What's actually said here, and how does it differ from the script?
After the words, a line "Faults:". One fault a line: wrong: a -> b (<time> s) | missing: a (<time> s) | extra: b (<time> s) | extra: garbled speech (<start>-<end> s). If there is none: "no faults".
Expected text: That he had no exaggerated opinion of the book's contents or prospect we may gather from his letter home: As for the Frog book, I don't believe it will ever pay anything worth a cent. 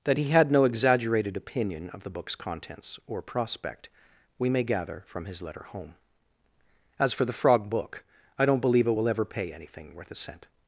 That he had no exaggerated opinion of the book's contents or prospect we may gather from his letter home: As for the Frog book, I don't believe it will ever pay anything worth a cent.
Faults:
no faults